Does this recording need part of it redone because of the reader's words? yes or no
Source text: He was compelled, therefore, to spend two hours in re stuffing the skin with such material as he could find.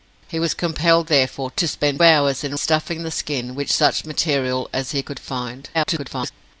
yes